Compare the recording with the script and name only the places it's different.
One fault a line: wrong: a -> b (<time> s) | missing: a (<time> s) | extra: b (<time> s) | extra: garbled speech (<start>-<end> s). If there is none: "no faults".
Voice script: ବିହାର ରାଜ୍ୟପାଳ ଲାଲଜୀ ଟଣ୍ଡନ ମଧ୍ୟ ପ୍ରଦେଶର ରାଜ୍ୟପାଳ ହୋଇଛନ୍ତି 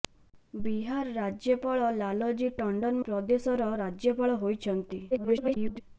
missing: ମଧ୍ୟ (3.0 s)
extra: garbled speech (5.1-5.8 s)